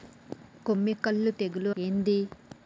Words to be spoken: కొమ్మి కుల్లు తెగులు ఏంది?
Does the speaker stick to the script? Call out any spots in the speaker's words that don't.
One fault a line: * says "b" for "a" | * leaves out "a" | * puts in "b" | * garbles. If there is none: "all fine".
all fine